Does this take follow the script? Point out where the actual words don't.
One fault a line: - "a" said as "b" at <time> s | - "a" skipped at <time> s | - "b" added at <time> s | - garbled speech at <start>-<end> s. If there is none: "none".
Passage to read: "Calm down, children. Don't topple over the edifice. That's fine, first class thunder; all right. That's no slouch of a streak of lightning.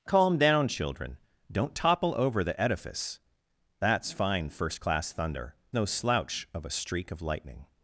- "all right That's" skipped at 5.5 s